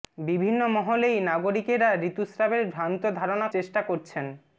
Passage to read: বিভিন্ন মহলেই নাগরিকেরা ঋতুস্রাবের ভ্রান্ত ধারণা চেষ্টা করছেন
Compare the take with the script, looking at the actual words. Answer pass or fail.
pass